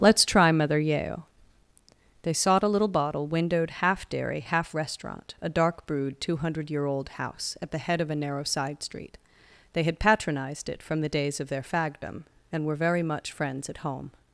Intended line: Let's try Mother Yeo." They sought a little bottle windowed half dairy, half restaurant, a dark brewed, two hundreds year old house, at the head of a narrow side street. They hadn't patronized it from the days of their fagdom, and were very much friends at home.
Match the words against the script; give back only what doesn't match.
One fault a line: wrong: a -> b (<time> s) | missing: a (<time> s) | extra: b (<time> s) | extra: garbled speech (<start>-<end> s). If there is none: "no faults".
wrong: hundreds -> hundred (6.4 s)
wrong: hadn't -> had (9.8 s)